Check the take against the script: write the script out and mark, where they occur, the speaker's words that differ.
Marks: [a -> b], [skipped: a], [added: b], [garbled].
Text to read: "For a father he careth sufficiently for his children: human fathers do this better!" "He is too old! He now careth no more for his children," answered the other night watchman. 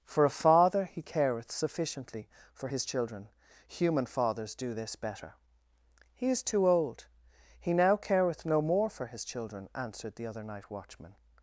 "For a father he careth sufficiently for his children: human fathers do this better!" "He is too old! He now careth no more for his children," answered the other night watchman.